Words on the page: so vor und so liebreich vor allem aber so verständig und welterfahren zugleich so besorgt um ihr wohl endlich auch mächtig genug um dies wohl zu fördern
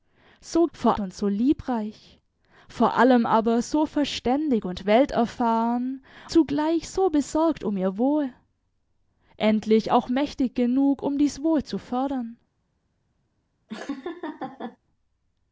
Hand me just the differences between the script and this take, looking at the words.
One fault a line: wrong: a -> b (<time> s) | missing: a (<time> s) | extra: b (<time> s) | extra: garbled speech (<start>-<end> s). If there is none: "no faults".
no faults